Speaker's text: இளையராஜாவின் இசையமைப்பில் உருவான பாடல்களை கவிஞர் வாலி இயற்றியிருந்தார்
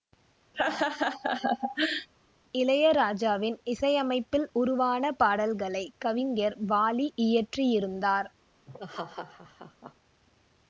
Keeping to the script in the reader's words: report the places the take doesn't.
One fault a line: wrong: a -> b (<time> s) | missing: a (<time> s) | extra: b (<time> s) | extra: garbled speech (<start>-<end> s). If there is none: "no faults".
no faults